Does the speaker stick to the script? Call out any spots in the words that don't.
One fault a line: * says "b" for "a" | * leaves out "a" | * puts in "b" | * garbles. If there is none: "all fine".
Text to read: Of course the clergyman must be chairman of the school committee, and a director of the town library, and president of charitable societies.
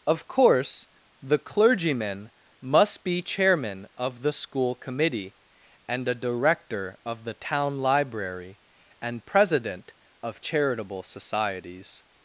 all fine